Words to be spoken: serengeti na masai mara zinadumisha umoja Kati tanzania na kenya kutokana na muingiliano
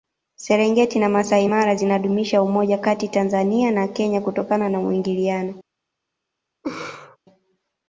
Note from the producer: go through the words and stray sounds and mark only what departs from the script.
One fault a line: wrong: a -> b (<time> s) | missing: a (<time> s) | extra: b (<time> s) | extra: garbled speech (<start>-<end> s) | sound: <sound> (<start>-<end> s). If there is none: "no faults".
sound: laugh (6.6-7.2 s)